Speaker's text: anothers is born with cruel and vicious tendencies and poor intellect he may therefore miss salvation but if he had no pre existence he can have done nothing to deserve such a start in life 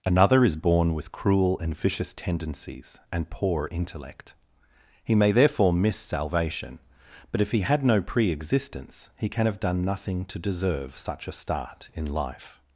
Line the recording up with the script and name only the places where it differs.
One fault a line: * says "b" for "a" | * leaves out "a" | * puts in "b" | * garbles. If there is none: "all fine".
* says "another" for "anothers"